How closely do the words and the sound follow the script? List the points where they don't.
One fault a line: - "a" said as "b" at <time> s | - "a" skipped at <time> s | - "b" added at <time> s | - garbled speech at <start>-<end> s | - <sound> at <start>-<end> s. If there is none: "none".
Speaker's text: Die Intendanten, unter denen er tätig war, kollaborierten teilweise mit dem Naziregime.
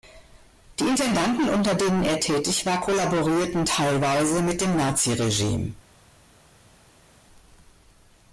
none